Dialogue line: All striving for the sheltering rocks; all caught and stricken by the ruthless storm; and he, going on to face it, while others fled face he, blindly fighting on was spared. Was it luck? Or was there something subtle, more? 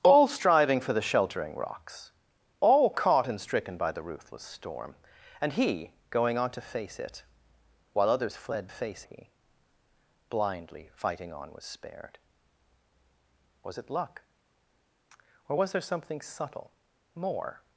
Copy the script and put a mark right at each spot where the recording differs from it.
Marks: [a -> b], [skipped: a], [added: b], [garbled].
All striving for the sheltering rocks; all caught and stricken by the ruthless storm; and he, going on to face it, while others fled face he, blindly fighting on was spared. Was it luck? Or was there something subtle, more?